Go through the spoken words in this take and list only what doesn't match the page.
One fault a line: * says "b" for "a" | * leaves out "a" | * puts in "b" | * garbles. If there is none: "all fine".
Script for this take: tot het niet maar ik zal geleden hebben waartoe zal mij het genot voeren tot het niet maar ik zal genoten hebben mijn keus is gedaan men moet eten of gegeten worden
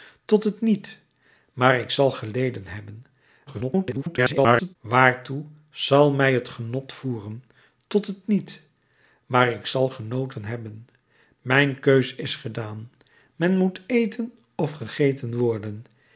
* garbles